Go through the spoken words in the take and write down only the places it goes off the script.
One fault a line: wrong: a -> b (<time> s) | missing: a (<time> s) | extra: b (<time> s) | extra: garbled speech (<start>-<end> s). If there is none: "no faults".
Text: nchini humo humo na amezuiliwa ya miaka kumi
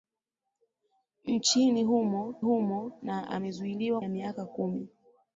no faults